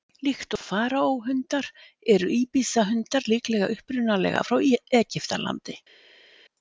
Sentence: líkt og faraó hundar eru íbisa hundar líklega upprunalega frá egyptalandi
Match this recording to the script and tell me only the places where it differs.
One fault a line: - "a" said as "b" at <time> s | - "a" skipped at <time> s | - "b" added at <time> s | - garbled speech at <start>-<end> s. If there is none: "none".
none